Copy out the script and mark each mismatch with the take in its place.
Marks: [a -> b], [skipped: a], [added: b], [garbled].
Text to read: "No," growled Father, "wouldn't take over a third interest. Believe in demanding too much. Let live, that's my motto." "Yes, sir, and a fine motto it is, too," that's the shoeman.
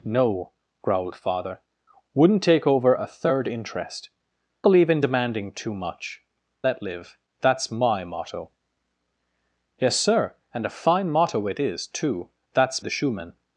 "No," growled Father, "wouldn't take over a third interest. Believe in demanding too much. Let live, that's my motto." "Yes, sir, and a fine motto it is, too," that's the shoeman.